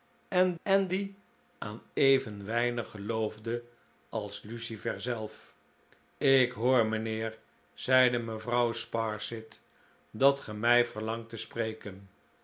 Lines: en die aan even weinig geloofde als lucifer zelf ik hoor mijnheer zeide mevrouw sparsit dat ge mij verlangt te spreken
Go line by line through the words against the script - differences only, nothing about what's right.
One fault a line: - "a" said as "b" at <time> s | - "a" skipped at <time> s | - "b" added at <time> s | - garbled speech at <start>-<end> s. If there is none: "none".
- "en" added at 0.6 s